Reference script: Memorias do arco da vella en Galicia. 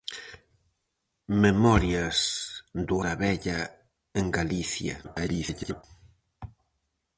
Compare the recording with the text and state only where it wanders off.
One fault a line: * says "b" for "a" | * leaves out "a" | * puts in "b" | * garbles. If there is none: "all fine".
* leaves out "arco"
* garbles